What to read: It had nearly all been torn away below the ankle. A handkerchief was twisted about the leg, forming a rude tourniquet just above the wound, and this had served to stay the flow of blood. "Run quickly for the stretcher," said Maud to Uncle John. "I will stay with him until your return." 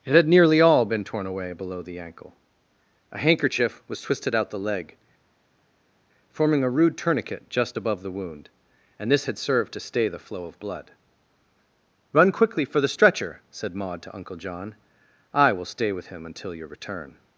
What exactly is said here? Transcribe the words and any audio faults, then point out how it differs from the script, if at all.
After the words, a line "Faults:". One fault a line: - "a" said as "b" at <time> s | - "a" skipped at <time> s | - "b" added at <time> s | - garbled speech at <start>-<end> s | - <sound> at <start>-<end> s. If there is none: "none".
It had nearly all been torn away below the ankle. A handkerchief was twisted out the leg, forming a rude tourniquet just above the wound, and this had served to stay the flow of blood. "Run quickly for the stretcher," said Maud to Uncle John. "I will stay with him until your return."
Faults:
- "about" said as "out" at 4.3 s